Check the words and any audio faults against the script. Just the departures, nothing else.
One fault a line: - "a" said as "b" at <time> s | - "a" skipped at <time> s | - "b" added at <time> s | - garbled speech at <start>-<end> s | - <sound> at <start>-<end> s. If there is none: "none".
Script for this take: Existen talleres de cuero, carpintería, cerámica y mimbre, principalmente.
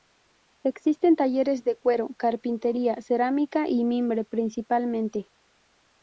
none